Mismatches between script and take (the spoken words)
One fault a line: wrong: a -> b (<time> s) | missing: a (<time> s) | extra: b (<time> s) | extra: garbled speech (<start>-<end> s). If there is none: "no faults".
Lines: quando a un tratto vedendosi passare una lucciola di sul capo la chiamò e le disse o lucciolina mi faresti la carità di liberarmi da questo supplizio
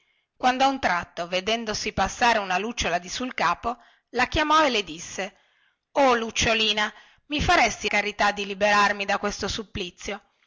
missing: la (7.9 s)